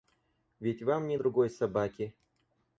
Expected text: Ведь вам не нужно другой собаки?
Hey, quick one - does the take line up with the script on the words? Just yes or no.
no